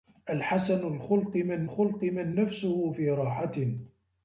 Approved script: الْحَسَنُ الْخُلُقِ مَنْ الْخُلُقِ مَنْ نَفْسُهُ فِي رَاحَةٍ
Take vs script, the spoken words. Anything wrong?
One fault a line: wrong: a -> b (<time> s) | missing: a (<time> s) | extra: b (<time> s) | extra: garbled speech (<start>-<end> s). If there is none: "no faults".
no faults